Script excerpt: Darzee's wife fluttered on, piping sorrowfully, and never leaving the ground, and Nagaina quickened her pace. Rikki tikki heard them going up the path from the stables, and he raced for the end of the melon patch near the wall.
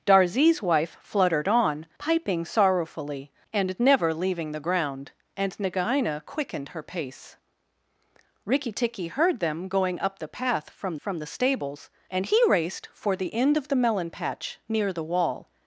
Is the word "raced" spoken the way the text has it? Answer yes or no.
yes